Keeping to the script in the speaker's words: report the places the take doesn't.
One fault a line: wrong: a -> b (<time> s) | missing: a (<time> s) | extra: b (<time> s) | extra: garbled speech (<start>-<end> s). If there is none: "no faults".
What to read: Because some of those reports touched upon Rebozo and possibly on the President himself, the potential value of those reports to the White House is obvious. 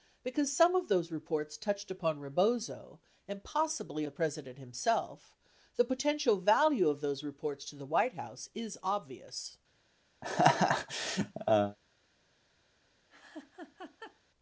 missing: on (4.0 s)